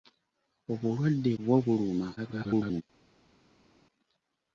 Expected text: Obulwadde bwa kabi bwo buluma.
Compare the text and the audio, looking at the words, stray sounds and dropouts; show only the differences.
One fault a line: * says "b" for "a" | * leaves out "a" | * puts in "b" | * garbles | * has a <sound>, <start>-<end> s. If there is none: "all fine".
* leaves out "bwa kabi"
* garbles